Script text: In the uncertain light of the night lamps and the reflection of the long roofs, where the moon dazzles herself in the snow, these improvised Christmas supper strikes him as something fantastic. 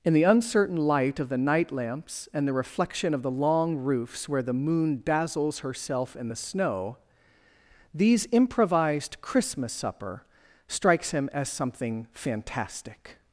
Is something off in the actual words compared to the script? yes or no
no